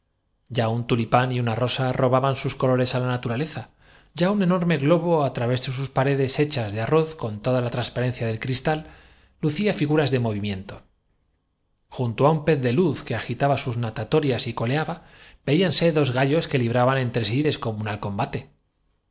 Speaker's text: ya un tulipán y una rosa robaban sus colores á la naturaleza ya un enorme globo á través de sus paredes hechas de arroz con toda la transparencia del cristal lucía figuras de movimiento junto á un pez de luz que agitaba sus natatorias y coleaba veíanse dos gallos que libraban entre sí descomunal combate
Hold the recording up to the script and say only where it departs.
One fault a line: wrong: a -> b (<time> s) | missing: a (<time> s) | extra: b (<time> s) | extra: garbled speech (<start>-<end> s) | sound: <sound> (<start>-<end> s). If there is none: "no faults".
no faults